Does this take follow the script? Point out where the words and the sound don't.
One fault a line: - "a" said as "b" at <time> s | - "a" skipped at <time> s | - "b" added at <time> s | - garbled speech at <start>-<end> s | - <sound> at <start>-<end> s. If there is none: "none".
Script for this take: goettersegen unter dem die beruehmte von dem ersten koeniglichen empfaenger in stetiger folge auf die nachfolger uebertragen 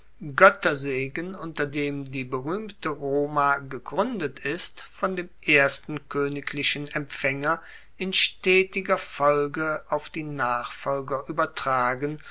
- "roma gegruendet ist" added at 2.9 s